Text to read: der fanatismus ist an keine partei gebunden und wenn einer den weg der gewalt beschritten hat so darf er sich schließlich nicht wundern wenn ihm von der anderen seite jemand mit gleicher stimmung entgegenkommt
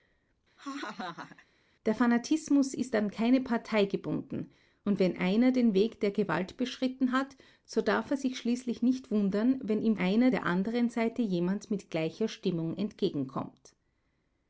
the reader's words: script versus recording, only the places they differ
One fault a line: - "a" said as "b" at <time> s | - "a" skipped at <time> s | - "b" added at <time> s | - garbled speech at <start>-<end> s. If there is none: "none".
- "von" said as "einer" at 10.0 s